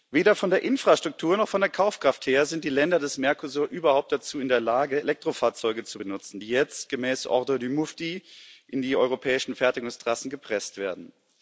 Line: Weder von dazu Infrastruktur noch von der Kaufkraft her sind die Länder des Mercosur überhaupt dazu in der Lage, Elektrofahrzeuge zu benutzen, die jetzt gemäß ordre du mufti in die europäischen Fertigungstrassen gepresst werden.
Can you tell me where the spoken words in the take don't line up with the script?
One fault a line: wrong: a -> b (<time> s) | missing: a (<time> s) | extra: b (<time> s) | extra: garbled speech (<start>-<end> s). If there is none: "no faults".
wrong: dazu -> der (0.5 s)